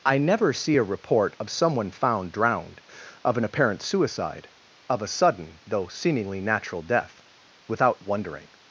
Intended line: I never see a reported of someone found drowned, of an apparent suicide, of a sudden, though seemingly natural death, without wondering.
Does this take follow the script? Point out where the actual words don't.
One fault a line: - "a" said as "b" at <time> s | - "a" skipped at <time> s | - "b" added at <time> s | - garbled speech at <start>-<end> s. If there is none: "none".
- "reported" said as "report" at 0.9 s